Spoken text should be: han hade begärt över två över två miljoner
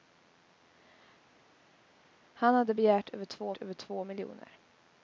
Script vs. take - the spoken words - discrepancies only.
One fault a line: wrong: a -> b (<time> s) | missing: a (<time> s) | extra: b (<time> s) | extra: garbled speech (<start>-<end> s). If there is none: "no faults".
no faults